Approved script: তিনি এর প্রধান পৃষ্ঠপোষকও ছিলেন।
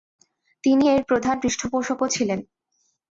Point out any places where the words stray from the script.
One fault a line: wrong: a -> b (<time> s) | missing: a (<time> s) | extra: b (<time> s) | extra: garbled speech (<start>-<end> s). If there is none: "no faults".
no faults